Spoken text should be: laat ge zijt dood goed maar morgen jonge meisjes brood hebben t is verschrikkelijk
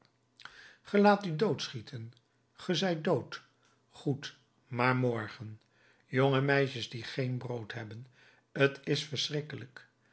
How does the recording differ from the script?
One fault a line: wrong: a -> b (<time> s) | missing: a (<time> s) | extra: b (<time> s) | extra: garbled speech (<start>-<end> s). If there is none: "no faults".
extra: u doodschieten (1.2 s)
extra: die geen (6.9 s)